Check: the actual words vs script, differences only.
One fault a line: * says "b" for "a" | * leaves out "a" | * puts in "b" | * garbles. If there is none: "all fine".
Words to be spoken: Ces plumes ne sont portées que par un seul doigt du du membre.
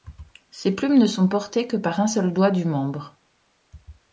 * leaves out "du"